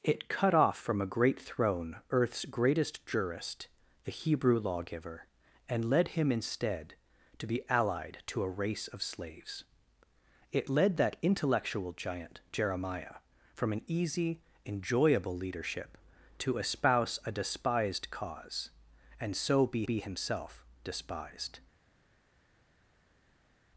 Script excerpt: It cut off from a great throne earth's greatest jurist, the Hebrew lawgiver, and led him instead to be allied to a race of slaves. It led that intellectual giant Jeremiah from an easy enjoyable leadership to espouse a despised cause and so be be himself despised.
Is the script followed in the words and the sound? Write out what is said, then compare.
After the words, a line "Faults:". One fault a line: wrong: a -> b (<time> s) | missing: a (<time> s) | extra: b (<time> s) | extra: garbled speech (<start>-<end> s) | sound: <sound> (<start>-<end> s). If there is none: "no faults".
It cut off from a great throne earth's greatest jurist, the Hebrew lawgiver, and led him instead to be allied to a race of slaves. It led that intellectual giant Jeremiah from an easy enjoyable leadership to espouse a despised cause and so be be himself despised.
Faults:
no faults